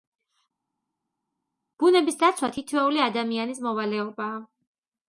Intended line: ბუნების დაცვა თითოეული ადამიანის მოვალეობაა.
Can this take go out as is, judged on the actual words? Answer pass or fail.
pass